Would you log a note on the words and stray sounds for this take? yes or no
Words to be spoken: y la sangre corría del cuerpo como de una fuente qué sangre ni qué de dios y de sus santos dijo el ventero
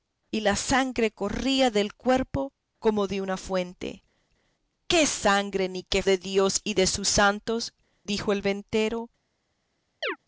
yes